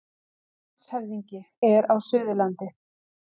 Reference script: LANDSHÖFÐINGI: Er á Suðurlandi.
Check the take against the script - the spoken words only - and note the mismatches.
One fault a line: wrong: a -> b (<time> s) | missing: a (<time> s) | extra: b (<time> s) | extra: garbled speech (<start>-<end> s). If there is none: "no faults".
no faults